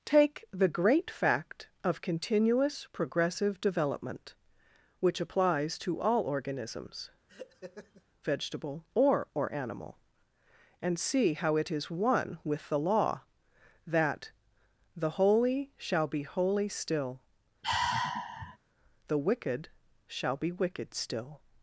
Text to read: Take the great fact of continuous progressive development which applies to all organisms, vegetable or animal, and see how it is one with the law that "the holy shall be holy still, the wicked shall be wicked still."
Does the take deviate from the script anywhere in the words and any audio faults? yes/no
yes